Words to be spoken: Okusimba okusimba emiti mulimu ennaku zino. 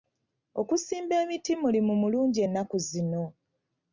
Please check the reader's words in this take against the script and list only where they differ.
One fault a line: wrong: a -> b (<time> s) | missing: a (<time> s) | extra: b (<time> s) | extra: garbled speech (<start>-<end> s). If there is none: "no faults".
missing: okusimba (1.1 s)
extra: mulungi (2.0 s)